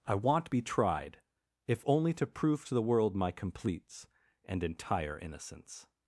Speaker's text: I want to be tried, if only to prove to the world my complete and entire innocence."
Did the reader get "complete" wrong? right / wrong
wrong